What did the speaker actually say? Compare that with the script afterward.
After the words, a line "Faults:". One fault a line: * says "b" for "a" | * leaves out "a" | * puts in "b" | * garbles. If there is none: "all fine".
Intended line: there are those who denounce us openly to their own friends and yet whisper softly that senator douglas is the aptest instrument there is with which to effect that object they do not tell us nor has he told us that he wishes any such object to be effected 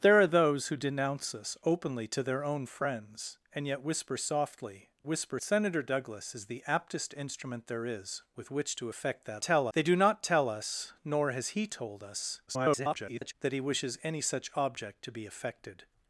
there are those who denounce us openly to their own friends and yet whisper softly whisper senator douglas is the aptest instrument there is with which to effect that tell they do not tell us nor has he told us [garbled] that he wishes any such object to be effected
Faults:
* says "whisper" for "that"
* says "tell" for "object"
* garbles